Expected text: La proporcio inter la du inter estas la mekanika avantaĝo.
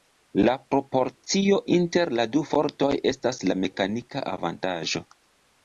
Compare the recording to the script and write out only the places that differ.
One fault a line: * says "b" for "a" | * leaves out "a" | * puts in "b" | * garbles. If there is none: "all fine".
* says "fortoj" for "inter"